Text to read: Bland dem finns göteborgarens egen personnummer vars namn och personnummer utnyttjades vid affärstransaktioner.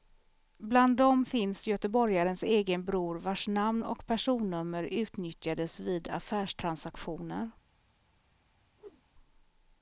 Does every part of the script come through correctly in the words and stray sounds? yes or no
no